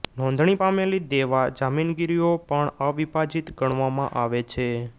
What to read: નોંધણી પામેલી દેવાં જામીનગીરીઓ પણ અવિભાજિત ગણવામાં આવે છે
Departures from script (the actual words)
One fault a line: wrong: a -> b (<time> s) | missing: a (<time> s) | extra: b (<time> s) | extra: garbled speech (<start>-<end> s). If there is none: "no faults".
no faults